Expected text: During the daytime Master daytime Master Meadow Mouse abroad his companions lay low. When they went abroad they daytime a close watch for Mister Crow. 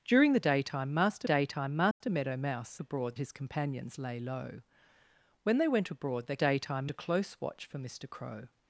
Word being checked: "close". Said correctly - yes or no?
yes